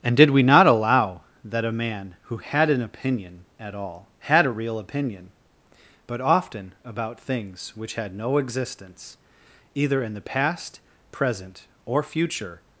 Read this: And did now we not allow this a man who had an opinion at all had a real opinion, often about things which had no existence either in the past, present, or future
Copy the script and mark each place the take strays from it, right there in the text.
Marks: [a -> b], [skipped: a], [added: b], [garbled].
And did [skipped: now] we not allow [this -> that] a man who had an opinion at all had a real opinion, [added: but] often about things which had no existence either in the past, present, or future